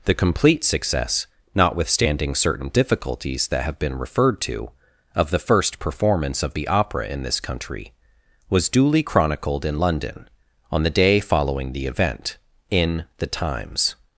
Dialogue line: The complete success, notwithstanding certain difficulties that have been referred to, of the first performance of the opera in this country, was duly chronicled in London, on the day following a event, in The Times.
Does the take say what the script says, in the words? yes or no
no